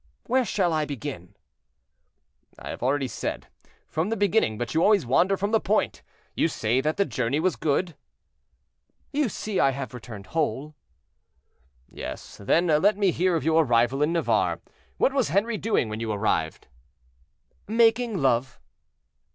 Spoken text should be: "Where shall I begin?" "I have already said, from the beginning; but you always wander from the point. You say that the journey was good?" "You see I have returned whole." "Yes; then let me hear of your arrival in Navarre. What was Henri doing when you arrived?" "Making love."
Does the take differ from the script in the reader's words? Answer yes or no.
no